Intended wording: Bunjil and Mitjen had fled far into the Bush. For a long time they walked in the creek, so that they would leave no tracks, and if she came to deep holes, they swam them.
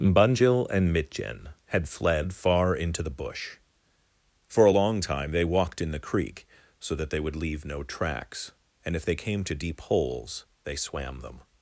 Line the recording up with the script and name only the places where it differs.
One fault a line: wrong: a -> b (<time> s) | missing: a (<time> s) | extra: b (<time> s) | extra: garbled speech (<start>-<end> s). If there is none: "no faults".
wrong: she -> they (9.0 s)